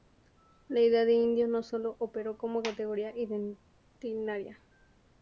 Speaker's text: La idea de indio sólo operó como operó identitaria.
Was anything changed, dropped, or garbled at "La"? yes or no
no